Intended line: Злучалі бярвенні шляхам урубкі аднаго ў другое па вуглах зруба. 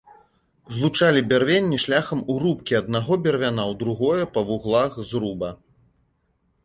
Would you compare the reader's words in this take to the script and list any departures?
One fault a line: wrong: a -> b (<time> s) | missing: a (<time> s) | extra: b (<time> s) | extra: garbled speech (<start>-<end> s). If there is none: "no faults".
extra: бервяна (3.2 s)